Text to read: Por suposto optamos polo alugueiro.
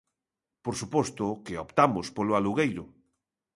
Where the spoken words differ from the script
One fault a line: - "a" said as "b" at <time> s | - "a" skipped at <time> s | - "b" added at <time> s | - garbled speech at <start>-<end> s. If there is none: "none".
- "que" added at 1.4 s